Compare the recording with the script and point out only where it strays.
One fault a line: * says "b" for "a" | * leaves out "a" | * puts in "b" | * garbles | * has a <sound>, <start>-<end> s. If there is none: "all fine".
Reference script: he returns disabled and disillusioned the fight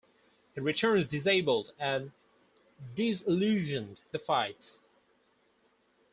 all fine